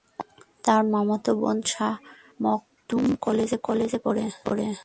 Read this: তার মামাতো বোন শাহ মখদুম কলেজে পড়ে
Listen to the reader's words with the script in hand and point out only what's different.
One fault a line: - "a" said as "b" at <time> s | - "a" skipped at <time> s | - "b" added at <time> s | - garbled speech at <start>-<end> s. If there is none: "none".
- "কলেজে" added at 3.6 s